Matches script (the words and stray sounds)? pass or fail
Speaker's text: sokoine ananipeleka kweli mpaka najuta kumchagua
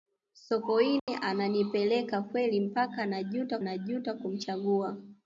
fail